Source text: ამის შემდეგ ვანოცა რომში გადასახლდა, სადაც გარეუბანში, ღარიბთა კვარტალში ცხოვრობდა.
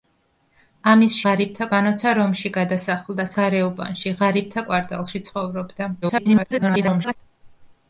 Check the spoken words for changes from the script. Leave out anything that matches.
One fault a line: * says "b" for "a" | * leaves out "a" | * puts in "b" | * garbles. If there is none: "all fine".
* says "ღარიბთა" for "შემდეგ"
* leaves out "სადაც"
* garbles